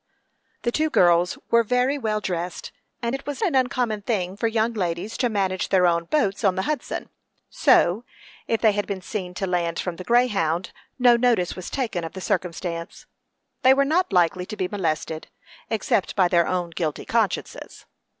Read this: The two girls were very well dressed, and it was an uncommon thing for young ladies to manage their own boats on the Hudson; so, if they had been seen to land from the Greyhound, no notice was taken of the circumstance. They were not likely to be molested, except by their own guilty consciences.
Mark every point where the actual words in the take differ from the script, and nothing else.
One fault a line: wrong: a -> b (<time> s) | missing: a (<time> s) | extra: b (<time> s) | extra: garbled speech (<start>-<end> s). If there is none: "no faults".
no faults